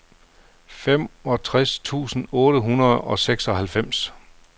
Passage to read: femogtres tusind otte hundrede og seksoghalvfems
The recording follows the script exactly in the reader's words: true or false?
true